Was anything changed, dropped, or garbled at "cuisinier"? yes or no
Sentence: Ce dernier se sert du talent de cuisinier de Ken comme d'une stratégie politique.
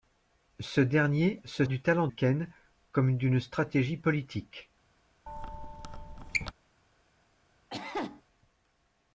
yes